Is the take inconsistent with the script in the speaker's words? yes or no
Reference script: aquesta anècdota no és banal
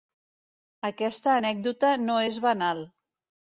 no